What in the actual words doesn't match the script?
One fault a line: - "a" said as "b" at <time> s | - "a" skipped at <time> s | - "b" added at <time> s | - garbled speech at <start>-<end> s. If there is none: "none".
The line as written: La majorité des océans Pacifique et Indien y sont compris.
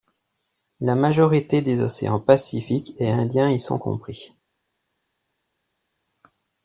none